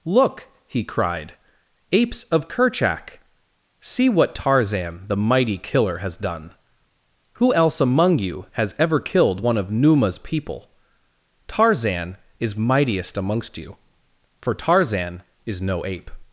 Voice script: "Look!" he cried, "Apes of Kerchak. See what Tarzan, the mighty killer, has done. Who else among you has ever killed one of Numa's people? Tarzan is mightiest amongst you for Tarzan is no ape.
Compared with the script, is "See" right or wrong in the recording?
right